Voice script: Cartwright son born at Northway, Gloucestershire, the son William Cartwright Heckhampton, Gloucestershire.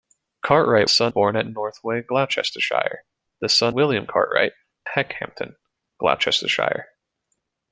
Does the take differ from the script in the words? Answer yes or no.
no